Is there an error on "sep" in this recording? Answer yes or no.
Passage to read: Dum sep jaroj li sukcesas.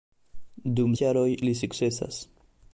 yes